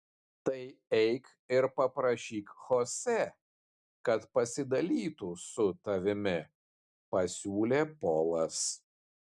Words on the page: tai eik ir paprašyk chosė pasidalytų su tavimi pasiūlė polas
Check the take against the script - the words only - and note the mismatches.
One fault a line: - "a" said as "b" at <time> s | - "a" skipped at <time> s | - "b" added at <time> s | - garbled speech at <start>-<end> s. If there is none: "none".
- "kad" added at 4.1 s